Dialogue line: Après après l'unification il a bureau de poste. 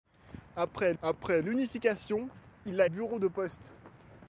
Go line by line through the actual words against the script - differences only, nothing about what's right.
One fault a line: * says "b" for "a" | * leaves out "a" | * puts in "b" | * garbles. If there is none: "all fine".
all fine